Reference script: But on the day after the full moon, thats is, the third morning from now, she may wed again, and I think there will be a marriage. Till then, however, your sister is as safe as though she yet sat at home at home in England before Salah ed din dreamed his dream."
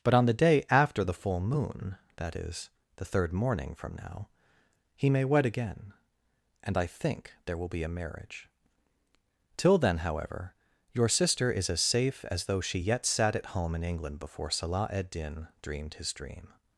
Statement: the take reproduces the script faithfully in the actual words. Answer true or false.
false